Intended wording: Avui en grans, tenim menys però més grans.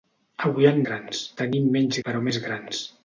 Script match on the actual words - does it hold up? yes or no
yes